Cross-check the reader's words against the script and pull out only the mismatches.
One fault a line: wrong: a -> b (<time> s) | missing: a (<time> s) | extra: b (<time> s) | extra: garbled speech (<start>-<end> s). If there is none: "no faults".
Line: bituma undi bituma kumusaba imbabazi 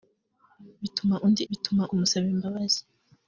no faults